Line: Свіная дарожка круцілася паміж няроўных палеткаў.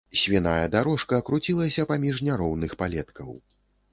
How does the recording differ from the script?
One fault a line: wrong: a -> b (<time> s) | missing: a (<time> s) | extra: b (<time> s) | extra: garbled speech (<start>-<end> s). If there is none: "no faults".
no faults